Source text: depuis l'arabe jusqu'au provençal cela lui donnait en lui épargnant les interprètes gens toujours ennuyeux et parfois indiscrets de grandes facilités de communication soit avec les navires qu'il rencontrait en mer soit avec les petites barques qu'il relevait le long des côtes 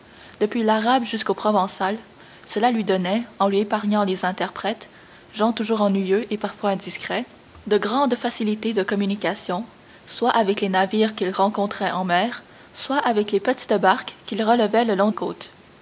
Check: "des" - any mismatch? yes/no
yes